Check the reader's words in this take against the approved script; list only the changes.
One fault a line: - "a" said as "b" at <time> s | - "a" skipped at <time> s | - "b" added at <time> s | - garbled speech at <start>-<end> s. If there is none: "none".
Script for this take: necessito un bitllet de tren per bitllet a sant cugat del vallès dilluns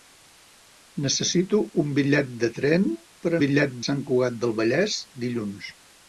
none